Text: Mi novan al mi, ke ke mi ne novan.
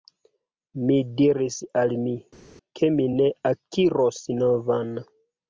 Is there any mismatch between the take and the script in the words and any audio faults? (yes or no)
yes